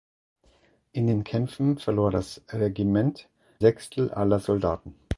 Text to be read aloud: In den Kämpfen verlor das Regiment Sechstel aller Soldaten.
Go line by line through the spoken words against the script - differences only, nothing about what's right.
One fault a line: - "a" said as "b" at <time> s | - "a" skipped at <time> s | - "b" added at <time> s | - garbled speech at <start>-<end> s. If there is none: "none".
none